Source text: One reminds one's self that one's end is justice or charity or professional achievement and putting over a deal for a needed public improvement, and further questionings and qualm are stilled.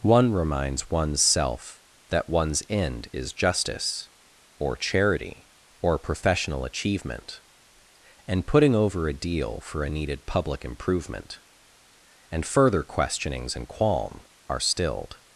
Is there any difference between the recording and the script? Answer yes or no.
no